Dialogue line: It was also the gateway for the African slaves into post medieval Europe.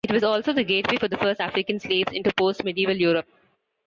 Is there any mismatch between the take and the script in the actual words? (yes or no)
yes